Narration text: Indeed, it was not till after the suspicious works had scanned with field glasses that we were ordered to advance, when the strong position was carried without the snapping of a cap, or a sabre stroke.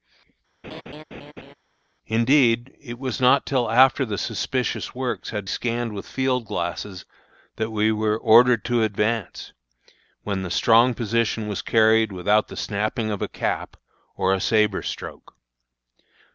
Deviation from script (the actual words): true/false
false